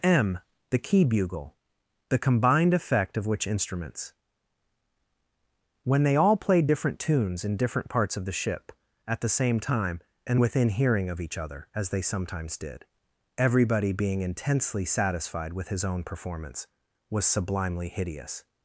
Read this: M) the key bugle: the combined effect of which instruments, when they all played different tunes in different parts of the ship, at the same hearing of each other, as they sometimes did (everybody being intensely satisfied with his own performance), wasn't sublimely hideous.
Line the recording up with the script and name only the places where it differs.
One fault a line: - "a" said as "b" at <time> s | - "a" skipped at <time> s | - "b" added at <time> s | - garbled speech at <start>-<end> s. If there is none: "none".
- "time and within" added at 9.6 s
- "wasn't" said as "was" at 17.1 s